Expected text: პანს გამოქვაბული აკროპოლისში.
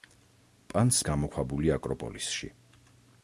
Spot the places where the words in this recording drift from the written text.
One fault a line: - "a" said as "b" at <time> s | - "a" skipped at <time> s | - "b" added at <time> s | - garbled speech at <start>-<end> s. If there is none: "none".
none